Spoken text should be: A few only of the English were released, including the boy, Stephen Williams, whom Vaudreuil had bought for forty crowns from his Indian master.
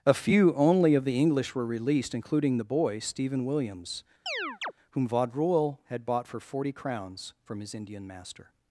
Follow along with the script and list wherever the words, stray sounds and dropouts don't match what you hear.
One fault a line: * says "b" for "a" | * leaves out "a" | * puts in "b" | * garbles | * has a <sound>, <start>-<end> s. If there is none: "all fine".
* has a chirp, 4.3-4.7 s